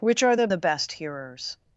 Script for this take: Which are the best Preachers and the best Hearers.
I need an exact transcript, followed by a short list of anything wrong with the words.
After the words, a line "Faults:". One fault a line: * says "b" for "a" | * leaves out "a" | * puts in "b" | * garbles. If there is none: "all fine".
Which are the the best Hearers.
Faults:
* leaves out "best Preachers and"